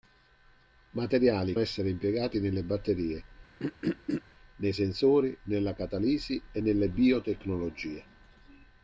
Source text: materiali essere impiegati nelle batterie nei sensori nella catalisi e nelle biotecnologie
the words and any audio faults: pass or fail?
fail